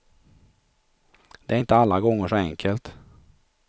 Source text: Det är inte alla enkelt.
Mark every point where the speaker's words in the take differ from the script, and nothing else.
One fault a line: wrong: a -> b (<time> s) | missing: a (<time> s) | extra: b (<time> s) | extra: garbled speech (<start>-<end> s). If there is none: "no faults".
extra: gånger så (2.0 s)